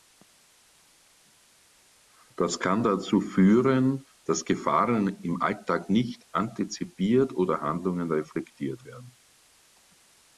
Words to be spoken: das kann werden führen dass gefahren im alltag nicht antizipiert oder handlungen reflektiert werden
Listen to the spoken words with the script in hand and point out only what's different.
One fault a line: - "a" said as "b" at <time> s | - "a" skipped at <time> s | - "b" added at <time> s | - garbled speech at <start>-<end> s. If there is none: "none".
- "werden" said as "dazu" at 2.8 s